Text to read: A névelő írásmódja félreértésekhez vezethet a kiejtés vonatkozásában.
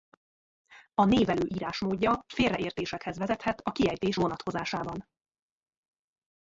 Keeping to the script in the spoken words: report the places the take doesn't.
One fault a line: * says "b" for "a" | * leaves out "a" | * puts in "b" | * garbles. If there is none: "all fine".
all fine